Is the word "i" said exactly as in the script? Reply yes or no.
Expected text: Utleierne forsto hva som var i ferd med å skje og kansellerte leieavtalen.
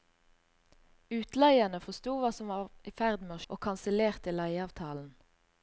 yes